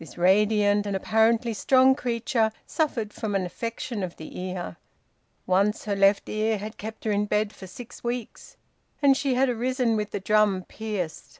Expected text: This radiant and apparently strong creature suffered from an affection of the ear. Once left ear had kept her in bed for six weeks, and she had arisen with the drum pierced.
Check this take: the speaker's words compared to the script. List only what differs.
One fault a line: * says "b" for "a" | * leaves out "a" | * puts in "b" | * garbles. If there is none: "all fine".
* puts in "her"